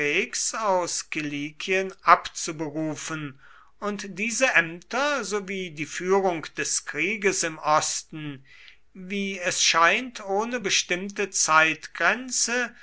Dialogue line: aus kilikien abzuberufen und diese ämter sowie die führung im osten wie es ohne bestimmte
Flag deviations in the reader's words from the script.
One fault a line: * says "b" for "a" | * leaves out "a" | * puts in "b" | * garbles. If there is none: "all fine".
* puts in "des krieges"
* puts in "scheint"